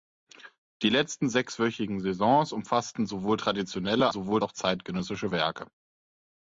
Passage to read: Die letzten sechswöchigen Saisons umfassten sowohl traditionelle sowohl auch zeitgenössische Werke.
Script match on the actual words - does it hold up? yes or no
yes